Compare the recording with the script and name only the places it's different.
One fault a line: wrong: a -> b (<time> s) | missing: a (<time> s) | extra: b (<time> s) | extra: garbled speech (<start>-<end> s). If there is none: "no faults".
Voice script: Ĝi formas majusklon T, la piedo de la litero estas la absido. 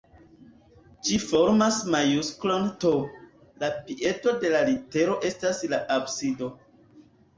no faults